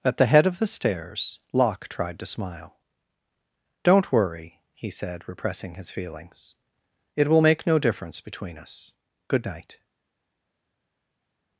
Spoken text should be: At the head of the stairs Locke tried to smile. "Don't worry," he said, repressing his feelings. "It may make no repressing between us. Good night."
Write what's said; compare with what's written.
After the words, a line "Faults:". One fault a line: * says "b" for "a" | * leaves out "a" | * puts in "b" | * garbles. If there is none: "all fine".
At the head of the stairs Locke tried to smile. "Don't worry," he said, repressing his feelings. "It will make no difference between us. Good night."
Faults:
* says "will" for "may"
* says "difference" for "repressing"